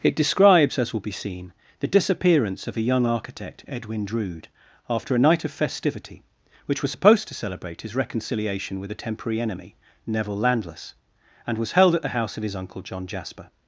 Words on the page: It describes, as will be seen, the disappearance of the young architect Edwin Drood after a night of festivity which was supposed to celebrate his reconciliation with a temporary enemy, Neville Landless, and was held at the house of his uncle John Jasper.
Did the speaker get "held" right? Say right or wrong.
right